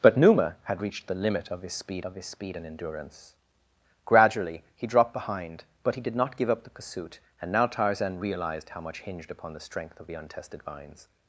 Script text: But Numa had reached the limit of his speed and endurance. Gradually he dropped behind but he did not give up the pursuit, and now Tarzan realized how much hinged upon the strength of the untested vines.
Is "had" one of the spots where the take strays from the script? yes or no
no